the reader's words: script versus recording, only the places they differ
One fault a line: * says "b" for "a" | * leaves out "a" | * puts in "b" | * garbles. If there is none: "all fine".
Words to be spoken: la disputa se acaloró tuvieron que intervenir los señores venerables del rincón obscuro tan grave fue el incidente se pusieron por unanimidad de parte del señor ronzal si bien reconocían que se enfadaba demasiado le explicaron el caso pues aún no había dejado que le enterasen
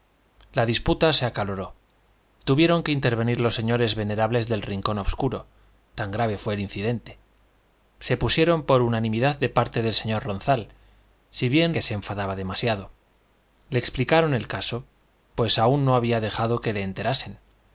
* leaves out "reconocían"